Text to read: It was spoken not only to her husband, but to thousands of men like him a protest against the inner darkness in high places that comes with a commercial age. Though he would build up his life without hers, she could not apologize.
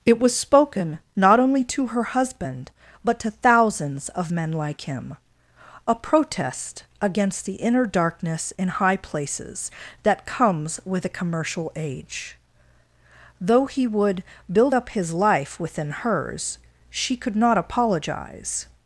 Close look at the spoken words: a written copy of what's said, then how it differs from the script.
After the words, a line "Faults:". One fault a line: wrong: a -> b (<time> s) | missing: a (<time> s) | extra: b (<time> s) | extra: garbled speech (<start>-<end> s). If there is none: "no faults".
It was spoken not only to her husband, but to thousands of men like him a protest against the inner darkness in high places that comes with a commercial age. Though he would build up his life within hers, she could not apologize.
Faults:
wrong: without -> within (15.6 s)